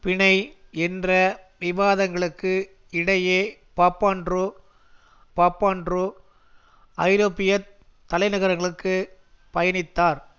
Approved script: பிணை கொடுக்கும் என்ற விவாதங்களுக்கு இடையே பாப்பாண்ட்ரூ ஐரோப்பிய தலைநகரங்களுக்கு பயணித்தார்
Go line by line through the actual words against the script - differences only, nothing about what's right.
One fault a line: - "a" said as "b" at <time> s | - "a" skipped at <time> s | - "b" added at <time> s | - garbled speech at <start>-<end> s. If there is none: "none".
- "கொடுக்கும்" skipped at 0.3 s
- "பாப்பாண்ட்ரூ" added at 5.4 s